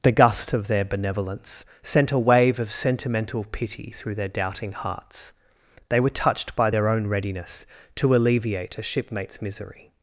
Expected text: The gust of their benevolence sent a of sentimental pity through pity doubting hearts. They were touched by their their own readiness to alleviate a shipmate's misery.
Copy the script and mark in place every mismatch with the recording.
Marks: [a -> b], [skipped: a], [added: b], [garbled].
The gust of their benevolence sent a [added: wave] of sentimental pity through [pity -> their] doubting hearts. They were touched by their [skipped: their] own readiness to alleviate a shipmate's misery.